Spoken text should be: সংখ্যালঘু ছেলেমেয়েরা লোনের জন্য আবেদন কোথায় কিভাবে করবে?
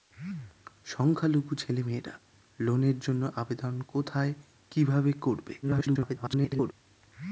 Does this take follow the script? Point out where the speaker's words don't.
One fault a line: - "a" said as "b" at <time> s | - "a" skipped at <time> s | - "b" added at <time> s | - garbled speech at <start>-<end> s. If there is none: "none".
- garbled speech at 5.6-6.7 s